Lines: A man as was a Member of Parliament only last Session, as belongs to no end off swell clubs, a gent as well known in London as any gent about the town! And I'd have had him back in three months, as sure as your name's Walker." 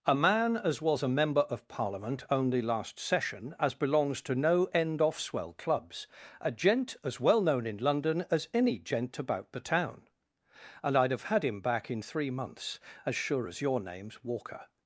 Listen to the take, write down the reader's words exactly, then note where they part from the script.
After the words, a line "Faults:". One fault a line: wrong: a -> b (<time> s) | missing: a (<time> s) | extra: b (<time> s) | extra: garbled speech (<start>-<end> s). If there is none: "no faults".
A man as was a Member of Parliament only last Session, as belongs to no end off swell clubs, a gent as well known in London as any gent about the town! And I'd have had him back in three months, as sure as your name's Walker."
Faults:
no faults